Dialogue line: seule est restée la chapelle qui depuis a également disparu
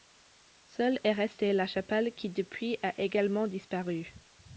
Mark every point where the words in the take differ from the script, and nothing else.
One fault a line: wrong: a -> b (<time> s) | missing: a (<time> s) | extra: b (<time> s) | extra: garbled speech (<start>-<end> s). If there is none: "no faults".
no faults